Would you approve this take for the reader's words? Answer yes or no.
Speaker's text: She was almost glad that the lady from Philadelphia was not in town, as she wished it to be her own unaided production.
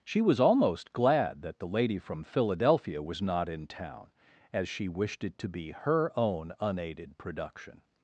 yes